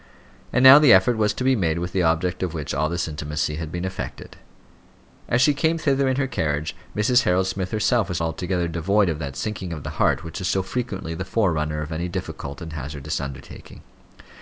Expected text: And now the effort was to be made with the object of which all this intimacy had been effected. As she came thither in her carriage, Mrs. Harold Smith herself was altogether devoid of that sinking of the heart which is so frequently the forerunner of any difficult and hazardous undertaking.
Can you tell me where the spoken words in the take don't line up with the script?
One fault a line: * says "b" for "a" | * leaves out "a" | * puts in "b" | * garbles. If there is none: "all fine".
all fine